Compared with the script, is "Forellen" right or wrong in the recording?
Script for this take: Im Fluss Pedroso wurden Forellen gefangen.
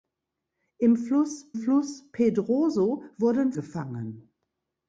wrong